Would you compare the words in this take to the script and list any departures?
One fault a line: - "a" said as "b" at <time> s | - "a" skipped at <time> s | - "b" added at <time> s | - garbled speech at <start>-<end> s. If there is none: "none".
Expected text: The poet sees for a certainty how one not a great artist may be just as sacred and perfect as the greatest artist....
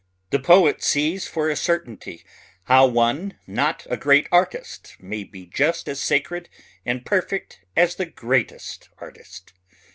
none